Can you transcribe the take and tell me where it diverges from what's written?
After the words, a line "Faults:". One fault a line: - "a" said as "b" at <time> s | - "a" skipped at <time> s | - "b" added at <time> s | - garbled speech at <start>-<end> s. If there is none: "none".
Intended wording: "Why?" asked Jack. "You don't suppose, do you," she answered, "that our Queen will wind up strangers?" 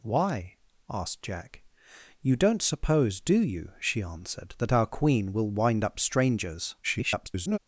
"Why?" asked Jack. "You don't suppose, do you," she answered, "that our Queen will wind up strangers?" [garbled]
Faults:
- garbled speech at 6.8-7.6 s